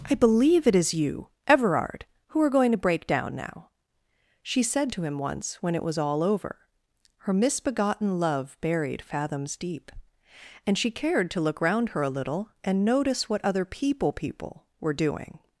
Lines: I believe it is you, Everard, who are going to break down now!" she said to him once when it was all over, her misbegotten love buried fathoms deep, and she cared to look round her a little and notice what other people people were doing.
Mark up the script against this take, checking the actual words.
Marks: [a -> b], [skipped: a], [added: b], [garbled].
I believe it is you, Everard, who are going to break down now!" she said to him once when it was all over, her misbegotten love buried fathoms deep, and she cared to look round her a little and notice what other people people were doing.